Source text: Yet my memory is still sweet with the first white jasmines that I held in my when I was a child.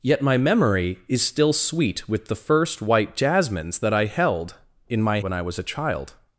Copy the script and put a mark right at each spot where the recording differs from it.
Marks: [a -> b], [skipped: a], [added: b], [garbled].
Yet my memory is still sweet with the first white jasmines that I held in my when I was a child.